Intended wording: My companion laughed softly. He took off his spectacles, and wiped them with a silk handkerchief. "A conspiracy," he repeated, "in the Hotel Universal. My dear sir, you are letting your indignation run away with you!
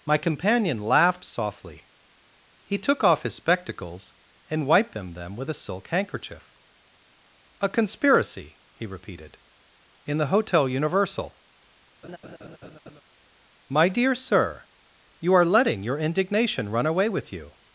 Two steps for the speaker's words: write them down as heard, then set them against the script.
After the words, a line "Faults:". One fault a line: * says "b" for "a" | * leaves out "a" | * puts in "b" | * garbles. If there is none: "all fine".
My companion laughed softly. He took off his spectacles, and wiped them them with a silk handkerchief. "A conspiracy," he repeated, "in the Hotel Universal. My dear sir, you are letting your indignation run away with you!
Faults:
* puts in "them"